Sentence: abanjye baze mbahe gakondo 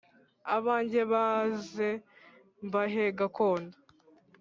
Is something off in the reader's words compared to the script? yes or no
no